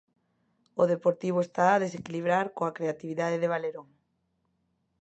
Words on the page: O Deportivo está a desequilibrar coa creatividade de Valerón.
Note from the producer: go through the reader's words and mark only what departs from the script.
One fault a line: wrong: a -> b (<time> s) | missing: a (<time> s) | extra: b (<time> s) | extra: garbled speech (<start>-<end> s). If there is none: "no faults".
no faults